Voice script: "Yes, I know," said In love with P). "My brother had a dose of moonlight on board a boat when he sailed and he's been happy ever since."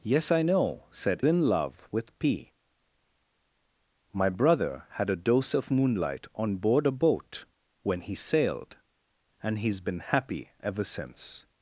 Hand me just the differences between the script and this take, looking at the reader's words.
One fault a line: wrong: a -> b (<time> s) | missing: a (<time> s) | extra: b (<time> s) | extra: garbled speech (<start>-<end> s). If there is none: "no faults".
no faults